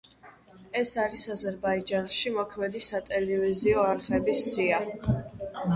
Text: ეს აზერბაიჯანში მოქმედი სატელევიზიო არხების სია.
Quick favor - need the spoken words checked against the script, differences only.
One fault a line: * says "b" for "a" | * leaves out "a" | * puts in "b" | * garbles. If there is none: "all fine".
* puts in "არის"